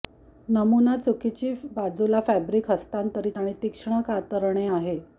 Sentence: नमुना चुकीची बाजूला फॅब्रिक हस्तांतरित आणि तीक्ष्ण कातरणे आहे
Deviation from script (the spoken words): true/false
false